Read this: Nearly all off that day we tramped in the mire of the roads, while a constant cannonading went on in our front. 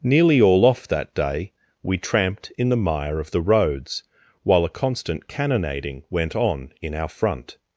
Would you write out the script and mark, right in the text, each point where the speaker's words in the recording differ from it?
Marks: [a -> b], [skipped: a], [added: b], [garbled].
Nearly all off that day we tramped in the mire of the roads, while a constant cannonading went on in our front.